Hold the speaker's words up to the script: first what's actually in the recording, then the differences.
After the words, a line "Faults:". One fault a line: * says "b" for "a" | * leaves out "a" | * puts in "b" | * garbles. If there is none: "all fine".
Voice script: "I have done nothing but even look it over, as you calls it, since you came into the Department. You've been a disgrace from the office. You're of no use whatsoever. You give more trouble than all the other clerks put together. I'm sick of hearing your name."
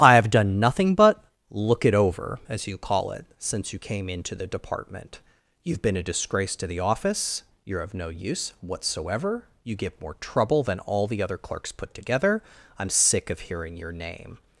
"I have done nothing but look it over, as you call it, since you came into the Department. You've been a disgrace to the office. You're of no use whatsoever. You give more trouble than all the other clerks put together. I'm sick of hearing your name."
Faults:
* leaves out "even"
* says "call" for "calls"
* says "to" for "from"